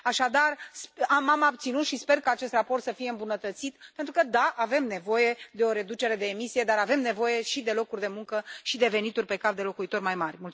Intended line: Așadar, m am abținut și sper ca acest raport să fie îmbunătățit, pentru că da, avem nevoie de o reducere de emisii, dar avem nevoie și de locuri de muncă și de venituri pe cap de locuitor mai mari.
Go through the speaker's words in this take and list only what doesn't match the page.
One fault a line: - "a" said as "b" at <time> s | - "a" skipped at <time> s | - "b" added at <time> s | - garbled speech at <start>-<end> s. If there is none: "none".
none